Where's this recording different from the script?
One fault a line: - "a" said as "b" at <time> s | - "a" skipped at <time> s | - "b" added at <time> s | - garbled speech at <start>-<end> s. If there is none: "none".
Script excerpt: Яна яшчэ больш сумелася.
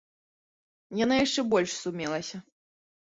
none